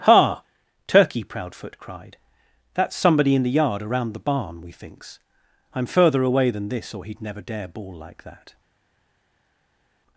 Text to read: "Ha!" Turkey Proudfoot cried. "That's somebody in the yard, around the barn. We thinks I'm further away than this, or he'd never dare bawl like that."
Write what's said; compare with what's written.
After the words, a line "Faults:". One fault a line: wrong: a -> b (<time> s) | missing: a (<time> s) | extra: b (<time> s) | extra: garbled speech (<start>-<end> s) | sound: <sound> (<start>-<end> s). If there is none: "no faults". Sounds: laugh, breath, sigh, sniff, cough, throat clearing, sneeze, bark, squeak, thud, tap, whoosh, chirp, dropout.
"Ha!" Turkey Proudfoot cried. "That's somebody in the yard, around the barn. We thinks I'm further away than this, or he'd never dare bawl like that."
Faults:
no faults